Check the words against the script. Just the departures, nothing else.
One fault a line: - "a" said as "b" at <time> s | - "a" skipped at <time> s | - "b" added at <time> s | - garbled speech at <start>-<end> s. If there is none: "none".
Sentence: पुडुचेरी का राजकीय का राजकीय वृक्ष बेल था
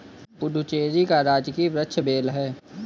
- "का राजकीय" skipped at 1.7 s
- "था" said as "है" at 2.3 s